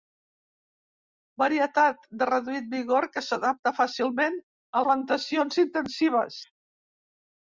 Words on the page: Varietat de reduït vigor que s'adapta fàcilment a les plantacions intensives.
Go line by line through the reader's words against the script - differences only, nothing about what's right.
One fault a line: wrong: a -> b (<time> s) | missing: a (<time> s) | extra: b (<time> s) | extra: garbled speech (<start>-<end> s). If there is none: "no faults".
missing: les (4.8 s)